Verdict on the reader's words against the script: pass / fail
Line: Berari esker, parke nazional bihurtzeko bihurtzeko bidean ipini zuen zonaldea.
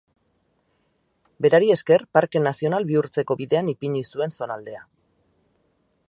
fail